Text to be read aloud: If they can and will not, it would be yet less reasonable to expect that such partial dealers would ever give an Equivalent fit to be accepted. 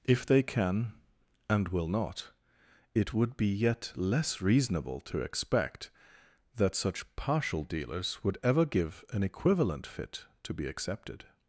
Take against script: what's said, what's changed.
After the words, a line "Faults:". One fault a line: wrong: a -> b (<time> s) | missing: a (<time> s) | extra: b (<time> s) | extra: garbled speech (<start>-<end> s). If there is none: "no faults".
If they can and will not, it would be yet less reasonable to expect that such partial dealers would ever give an Equivalent fit to be accepted.
Faults:
no faults